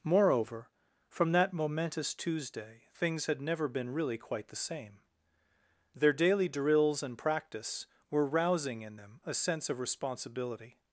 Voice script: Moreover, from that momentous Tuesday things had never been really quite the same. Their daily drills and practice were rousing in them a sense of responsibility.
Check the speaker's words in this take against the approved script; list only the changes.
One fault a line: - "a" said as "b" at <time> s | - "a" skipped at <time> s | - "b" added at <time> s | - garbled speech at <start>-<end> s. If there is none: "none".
none